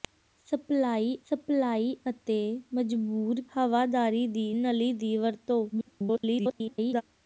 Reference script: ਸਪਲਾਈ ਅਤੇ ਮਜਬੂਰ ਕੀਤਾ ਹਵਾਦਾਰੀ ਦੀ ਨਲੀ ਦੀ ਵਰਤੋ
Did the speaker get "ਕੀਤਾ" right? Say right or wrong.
wrong